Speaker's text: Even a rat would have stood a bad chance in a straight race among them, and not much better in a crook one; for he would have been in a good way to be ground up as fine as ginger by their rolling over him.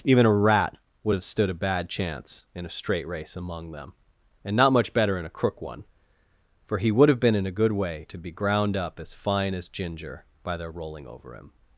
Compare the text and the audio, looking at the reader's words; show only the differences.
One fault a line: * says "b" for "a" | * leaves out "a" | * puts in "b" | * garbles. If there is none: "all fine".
all fine